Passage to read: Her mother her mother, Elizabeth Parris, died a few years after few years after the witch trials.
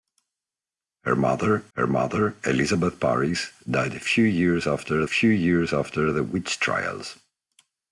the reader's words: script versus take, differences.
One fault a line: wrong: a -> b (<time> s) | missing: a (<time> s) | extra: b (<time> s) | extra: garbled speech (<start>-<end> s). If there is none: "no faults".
no faults